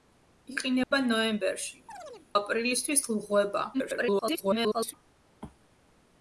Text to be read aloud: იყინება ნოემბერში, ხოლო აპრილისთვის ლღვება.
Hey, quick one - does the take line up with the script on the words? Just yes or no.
no